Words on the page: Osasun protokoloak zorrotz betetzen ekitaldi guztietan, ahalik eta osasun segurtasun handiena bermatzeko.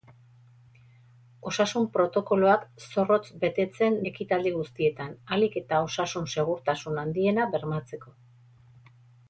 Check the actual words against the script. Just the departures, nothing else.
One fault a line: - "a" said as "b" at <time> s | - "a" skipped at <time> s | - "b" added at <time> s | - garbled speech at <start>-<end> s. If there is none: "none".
none